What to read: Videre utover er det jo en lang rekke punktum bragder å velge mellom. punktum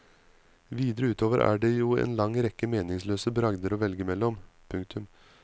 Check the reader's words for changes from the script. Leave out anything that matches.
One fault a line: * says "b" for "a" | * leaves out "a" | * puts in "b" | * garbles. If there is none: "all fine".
* says "meningsløse" for "punktum"